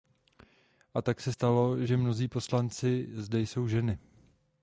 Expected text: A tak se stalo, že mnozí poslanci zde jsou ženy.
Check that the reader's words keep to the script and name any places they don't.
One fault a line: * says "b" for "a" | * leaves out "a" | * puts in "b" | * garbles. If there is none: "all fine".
all fine